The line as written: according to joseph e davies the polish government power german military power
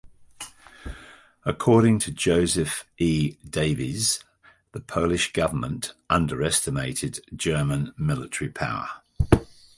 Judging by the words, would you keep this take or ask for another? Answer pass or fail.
fail